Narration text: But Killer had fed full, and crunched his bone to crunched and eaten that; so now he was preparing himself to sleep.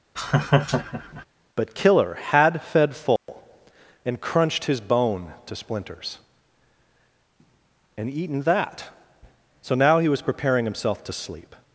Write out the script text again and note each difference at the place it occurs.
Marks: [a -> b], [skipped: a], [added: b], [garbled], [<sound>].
[laugh] But Killer had fed full, [dropout] and crunched his bone to [crunched -> splinters] and eaten that; so now he was preparing himself to sleep.